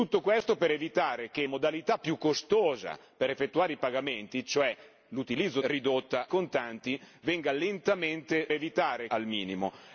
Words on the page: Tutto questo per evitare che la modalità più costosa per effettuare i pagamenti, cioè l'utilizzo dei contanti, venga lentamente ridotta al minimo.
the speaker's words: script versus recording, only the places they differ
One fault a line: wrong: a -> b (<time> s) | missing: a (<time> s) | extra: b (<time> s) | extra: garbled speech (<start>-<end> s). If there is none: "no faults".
missing: la (1.4 s)
wrong: dei -> ridotta (5.6 s)
wrong: ridotta -> evitare (8.5 s)